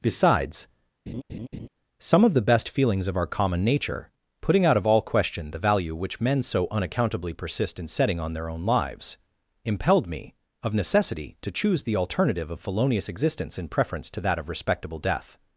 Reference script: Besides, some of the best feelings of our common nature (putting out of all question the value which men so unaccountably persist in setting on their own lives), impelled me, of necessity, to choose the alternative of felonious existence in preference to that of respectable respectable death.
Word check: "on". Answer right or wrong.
right